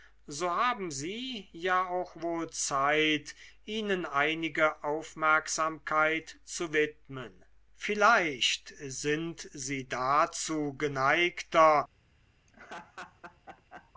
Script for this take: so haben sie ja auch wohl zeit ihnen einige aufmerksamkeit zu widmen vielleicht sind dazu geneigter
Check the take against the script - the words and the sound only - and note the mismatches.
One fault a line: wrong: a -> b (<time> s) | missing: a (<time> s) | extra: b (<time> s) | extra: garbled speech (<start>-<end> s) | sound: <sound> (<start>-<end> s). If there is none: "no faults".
extra: sie (9.5 s)
sound: laugh (12.5-13.9 s)